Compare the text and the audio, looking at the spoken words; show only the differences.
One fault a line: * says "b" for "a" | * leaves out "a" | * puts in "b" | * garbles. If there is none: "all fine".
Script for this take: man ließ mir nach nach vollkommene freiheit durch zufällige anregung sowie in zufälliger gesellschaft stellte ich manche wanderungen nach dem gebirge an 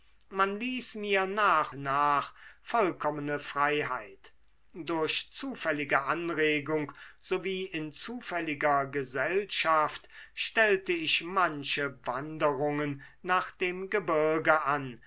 all fine